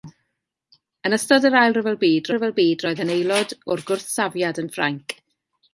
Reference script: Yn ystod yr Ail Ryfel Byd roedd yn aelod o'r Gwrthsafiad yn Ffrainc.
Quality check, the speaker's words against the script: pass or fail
fail